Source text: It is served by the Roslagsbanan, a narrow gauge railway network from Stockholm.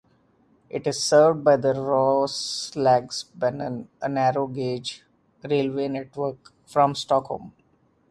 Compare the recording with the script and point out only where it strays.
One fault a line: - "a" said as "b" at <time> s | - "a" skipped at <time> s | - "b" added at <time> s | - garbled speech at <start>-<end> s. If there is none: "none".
none